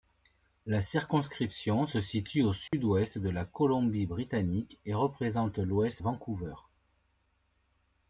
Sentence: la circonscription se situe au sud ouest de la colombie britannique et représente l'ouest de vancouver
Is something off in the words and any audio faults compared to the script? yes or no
yes